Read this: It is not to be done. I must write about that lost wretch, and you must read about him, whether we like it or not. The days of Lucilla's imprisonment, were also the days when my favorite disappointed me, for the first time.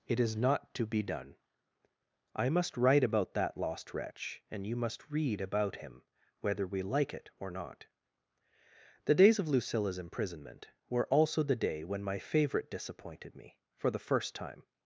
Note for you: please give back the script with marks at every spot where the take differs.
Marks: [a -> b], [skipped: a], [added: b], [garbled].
It is not to be done. I must write about that lost wretch, and you must read about him, whether we like it or not. The days of Lucilla's imprisonment, were also the [days -> day] when my favorite disappointed me, for the first time.